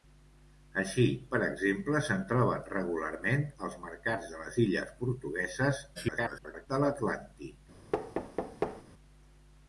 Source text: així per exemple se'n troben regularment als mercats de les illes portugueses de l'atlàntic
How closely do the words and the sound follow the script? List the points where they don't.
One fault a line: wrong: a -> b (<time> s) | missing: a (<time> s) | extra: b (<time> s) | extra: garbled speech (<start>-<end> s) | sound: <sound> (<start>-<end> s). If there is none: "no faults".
extra: garbled speech (5.9-6.7 s)
sound: thud (7.9-8.8 s)